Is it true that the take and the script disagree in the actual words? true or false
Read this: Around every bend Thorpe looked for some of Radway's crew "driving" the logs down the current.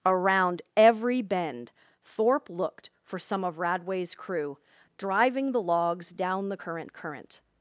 true